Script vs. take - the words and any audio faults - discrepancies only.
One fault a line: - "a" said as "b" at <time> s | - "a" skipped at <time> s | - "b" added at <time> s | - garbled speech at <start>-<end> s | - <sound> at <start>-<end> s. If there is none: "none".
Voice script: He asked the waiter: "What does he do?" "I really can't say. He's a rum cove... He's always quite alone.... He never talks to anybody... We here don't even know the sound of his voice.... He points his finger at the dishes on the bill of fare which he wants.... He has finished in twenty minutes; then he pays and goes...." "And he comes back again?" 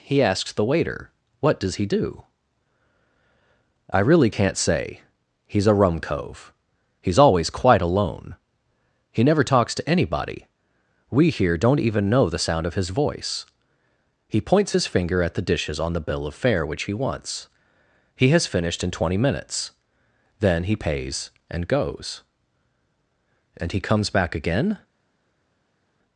- "asked" said as "asks" at 0.2 s